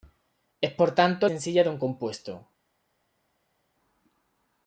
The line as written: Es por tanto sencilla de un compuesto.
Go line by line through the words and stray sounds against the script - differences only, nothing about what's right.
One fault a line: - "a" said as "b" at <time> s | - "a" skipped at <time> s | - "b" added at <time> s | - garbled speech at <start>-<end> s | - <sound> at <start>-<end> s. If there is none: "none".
none